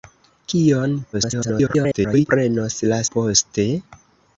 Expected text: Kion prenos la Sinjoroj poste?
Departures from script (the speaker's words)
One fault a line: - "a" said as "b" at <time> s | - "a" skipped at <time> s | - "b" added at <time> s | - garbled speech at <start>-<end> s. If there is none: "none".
- garbled speech at 1.1-2.3 s
- "Sinjoroj" skipped at 3.0 s